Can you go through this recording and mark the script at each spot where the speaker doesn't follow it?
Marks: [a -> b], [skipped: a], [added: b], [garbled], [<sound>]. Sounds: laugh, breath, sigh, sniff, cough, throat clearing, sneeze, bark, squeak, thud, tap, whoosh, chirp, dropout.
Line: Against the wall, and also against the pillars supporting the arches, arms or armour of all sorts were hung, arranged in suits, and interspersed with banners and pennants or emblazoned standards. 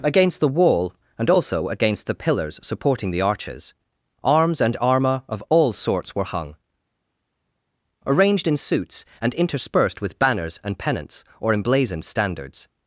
Against the wall, and also against the pillars supporting the arches, arms [or -> and] armour of all sorts were hung, arranged in suits, and interspersed with banners and pennants or emblazoned standards.